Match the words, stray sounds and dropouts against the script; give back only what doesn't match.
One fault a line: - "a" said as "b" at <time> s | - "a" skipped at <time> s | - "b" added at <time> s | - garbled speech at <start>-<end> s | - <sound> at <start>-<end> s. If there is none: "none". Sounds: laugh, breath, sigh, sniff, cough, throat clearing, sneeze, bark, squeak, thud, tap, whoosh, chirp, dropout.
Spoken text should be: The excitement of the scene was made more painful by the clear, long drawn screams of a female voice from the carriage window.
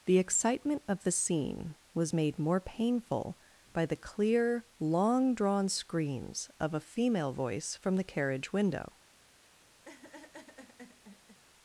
- laugh at 9.9-11.4 s